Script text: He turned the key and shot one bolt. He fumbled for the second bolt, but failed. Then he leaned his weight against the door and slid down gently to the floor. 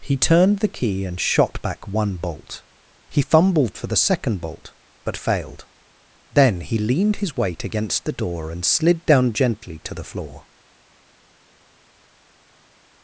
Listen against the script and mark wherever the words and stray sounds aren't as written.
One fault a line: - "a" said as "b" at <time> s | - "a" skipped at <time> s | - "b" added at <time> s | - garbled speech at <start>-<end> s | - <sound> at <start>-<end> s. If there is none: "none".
- "back" added at 1.6 s